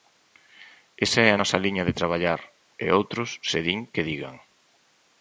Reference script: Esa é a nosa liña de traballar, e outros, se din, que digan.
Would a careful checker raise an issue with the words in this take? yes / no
no